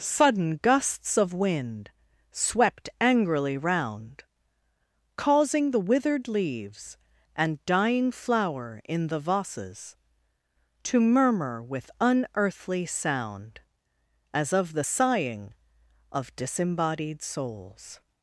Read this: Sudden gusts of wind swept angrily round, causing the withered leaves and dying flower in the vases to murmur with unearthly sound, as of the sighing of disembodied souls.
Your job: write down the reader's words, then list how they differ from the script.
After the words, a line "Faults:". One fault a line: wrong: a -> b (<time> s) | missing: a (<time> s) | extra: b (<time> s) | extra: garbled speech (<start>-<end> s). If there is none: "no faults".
Sudden gusts of wind swept angrily round, causing the withered leaves and dying flower in the vases to murmur with unearthly sound, as of the sighing of disembodied souls.
Faults:
no faults